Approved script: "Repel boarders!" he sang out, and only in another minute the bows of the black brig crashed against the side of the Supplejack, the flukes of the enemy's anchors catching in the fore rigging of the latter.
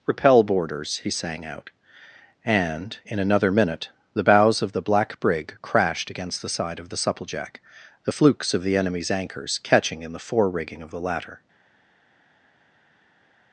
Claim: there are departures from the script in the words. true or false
true